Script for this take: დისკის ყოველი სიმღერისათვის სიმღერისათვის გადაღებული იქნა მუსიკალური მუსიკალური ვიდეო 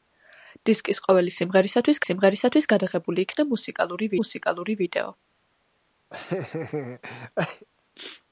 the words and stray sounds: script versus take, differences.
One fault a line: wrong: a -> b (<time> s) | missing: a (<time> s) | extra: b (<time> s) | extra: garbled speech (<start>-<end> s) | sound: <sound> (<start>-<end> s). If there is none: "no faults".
sound: laugh (6.1-7.7 s)